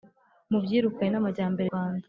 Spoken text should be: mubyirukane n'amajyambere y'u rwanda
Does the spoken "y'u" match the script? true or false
false